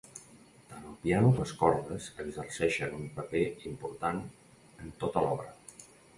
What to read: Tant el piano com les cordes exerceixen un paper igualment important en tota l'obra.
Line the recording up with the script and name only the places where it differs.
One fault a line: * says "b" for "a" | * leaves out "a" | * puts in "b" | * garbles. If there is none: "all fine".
* leaves out "com"
* leaves out "igualment"